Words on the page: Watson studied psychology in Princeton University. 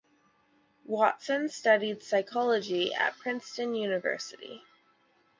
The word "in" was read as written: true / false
false